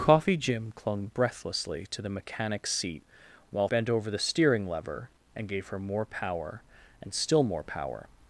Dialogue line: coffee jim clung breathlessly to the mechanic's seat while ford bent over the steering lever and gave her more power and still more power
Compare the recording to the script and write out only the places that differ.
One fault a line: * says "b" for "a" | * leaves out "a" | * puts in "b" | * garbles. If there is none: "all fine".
* leaves out "ford"